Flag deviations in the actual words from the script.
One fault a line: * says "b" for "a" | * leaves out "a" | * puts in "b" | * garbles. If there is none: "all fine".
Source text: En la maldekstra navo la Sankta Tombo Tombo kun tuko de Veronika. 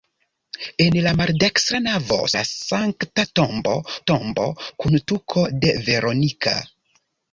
all fine